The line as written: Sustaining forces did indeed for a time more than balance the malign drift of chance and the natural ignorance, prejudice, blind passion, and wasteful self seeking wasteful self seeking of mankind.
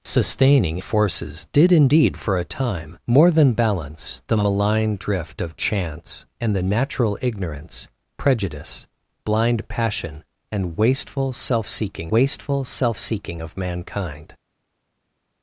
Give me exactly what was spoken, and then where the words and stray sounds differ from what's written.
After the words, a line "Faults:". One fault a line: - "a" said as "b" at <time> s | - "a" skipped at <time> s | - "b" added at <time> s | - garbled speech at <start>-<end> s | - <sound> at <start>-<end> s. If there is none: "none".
Sustaining forces did indeed for a time more than balance the malign drift of chance and the natural ignorance, prejudice, blind passion, and wasteful self seeking wasteful self seeking of mankind.
Faults:
none